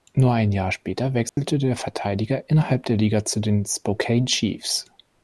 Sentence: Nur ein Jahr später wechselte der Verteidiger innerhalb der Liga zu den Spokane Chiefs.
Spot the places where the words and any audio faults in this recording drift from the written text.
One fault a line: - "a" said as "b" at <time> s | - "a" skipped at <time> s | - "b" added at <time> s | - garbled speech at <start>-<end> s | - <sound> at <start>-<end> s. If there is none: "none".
- dropout at 1.3-1.4 s